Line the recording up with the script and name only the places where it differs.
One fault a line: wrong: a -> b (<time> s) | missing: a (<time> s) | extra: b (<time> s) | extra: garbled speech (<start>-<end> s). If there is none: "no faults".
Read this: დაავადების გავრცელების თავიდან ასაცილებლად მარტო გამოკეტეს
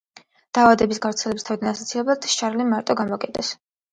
extra: შარლი (2.3 s)